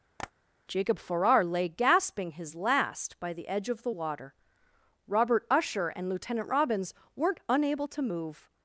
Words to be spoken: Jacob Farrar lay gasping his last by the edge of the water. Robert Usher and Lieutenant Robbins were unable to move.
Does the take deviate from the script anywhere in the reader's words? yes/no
yes